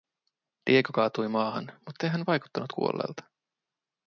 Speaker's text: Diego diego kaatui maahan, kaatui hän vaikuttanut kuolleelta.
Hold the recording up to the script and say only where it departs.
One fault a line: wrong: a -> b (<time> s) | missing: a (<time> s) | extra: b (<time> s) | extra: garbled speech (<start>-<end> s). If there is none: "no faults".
missing: diego (0.9 s)
wrong: kaatui -> muttei (1.9 s)